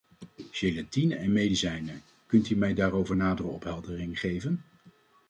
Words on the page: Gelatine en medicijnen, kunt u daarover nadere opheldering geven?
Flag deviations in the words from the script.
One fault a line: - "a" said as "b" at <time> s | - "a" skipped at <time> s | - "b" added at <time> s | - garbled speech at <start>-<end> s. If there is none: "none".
- "mij" added at 2.5 s